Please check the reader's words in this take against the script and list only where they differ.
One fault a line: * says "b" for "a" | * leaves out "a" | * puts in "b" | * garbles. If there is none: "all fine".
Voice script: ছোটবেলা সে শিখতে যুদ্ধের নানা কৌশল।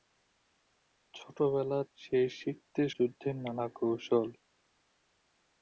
all fine